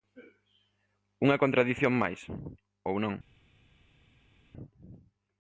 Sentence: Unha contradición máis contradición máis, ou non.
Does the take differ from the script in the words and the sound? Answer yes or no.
yes